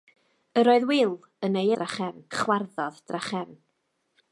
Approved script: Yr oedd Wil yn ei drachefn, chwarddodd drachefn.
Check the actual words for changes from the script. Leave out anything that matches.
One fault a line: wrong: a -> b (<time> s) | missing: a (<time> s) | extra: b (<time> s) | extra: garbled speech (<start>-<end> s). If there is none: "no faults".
no faults